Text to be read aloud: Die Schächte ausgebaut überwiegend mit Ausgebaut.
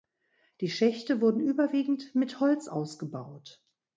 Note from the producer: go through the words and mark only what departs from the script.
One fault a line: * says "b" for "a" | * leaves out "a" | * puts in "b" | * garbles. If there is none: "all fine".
* says "wurden" for "ausgebaut"
* puts in "Holz"